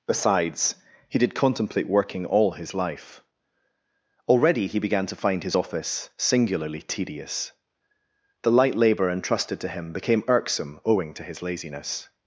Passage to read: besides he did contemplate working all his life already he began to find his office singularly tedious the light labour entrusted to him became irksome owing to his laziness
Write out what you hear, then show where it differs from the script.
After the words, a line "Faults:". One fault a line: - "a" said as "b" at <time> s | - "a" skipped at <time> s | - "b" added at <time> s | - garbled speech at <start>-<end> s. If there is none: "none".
besides he did contemplate working all his life already he began to find his office singularly tedious the light labour entrusted to him became irksome owing to his laziness
Faults:
none